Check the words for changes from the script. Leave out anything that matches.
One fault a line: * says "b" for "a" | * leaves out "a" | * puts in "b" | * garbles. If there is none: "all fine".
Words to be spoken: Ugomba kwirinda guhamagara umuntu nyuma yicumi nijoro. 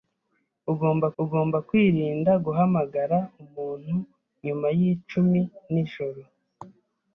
* puts in "ugomba"